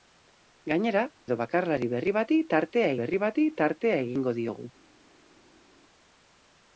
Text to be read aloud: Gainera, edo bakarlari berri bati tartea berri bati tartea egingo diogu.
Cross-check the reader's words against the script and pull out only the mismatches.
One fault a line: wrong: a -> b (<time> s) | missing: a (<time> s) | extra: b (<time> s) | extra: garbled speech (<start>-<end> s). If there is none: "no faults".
no faults